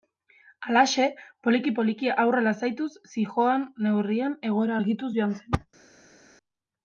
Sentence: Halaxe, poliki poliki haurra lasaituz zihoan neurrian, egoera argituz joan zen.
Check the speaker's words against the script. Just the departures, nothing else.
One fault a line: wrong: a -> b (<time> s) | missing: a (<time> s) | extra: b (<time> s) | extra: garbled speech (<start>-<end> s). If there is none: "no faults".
no faults